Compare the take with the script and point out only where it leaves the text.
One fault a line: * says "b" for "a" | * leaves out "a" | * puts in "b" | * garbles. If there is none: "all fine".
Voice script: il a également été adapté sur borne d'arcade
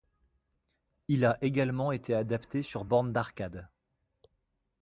all fine